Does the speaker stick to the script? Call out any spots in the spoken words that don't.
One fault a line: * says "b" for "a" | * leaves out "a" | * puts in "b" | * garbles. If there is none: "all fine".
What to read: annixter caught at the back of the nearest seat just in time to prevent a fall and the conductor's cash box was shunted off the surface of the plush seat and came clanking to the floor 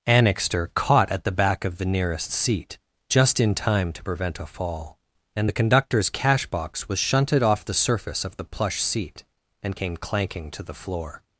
all fine